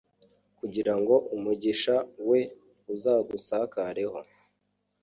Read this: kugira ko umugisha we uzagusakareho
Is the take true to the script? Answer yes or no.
no